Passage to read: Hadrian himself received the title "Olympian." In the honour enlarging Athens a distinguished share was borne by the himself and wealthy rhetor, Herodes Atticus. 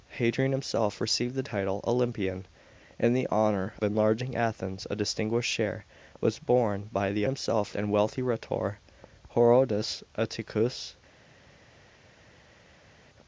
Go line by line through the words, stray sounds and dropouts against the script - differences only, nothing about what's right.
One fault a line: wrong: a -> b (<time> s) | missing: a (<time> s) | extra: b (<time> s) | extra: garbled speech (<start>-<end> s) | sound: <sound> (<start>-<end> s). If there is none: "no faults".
no faults